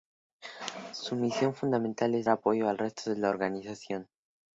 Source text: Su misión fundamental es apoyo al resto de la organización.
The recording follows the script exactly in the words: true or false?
true